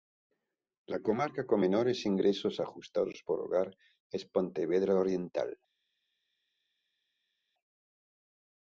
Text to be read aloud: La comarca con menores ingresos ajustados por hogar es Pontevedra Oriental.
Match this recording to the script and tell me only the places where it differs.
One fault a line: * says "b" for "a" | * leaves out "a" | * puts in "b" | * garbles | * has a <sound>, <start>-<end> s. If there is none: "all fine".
all fine